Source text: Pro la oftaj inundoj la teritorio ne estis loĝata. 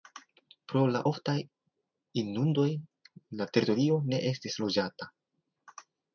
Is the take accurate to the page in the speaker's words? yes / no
yes